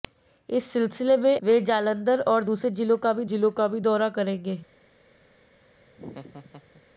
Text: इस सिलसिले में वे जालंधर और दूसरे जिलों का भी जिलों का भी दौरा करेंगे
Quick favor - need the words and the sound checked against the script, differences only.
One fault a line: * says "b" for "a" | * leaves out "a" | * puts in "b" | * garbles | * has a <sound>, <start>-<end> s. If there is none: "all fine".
* has a laugh, 5.9-6.8 s